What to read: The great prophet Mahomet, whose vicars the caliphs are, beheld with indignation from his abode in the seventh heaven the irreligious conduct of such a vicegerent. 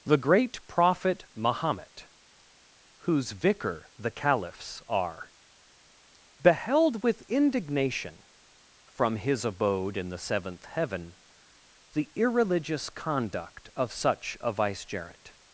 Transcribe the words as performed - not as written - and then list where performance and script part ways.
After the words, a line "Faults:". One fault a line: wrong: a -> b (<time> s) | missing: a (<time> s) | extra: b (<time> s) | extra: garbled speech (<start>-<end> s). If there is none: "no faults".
The great prophet Mahomet, whose vicar the caliphs are, beheld with indignation from his abode in the seventh heaven the irreligious conduct of such a vicegerent.
Faults:
wrong: vicars -> vicar (3.3 s)